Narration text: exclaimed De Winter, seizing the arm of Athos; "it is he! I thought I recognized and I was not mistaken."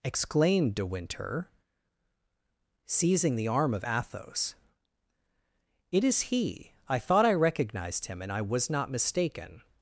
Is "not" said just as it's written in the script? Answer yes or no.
yes